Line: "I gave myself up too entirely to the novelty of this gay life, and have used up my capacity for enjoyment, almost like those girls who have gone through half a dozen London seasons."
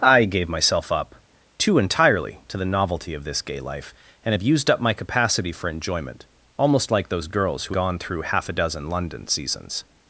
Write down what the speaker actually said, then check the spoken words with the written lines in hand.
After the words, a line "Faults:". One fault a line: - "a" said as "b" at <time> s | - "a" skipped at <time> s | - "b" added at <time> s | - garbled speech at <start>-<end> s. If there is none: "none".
"I gave myself up too entirely to the novelty of this gay life, and have used up my capacity for enjoyment, almost like those girls who gone through half a dozen London seasons."
Faults:
- "have" skipped at 7.8 s